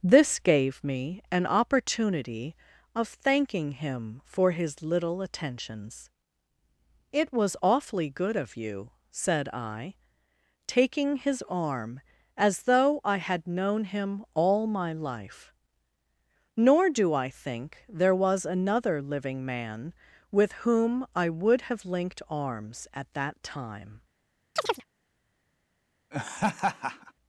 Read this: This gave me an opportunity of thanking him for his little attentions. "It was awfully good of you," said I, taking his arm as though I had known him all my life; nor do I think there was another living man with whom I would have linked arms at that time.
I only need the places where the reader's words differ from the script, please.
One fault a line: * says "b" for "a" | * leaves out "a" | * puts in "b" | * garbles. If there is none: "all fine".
all fine